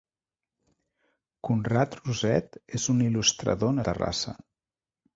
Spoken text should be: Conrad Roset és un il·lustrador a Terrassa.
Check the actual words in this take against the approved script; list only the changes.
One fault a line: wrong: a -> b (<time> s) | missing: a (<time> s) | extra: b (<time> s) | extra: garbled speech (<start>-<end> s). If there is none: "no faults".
no faults